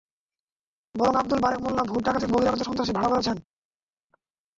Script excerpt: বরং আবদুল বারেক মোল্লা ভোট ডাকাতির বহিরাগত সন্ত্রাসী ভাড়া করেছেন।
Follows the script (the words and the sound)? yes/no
yes